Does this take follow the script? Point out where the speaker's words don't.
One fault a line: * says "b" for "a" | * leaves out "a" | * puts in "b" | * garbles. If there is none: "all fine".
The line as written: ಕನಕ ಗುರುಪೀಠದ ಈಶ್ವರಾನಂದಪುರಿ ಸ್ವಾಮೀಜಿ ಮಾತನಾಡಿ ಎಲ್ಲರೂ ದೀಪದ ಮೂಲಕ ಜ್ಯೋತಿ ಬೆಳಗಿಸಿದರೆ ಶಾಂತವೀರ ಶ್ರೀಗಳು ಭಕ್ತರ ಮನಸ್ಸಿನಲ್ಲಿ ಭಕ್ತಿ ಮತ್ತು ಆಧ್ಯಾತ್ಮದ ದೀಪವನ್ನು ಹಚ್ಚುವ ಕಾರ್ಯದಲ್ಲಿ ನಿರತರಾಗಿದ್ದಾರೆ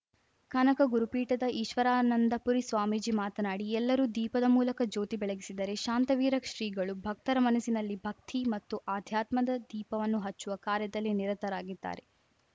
all fine